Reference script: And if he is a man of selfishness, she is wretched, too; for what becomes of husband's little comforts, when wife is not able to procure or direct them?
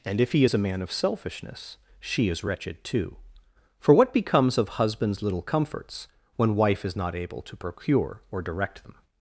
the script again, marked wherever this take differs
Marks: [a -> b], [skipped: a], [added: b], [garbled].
And if he is a man of selfishness, she is wretched, too; for what becomes of husband's little comforts, when wife is not able to procure or direct them?